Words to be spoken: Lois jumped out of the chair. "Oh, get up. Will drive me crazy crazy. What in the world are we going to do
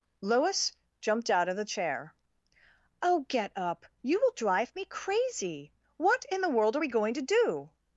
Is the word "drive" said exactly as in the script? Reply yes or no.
yes